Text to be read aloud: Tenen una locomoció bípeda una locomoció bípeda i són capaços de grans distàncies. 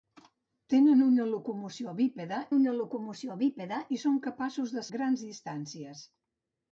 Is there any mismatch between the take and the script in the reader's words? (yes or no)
no